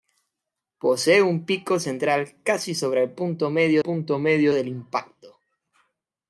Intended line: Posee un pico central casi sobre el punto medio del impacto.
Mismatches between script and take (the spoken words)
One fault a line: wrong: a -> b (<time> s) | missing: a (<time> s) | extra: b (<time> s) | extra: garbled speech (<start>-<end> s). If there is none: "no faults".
extra: punto medio (3.8 s)